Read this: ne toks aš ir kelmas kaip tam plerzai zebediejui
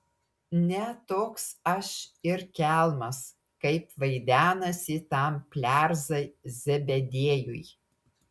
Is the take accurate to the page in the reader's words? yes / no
no